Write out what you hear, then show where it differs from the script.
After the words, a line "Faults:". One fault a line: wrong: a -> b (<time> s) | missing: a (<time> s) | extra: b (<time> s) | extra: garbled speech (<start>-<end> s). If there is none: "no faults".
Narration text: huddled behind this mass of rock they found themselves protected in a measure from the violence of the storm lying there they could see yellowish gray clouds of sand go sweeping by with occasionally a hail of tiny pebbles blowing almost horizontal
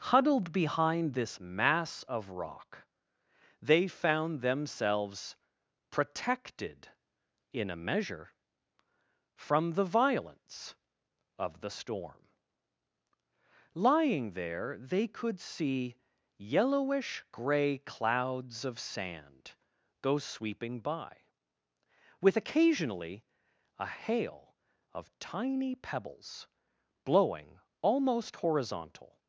huddled behind this mass of rock they found themselves protected in a measure from the violence of the storm lying there they could see yellowish gray clouds of sand go sweeping by with occasionally a hail of tiny pebbles blowing almost horizontal
Faults:
no faults